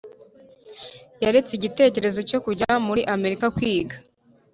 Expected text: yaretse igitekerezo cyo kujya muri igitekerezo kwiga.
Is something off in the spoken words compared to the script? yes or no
yes